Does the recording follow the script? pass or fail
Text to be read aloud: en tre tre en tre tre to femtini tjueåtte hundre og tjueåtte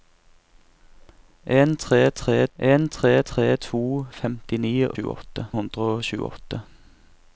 pass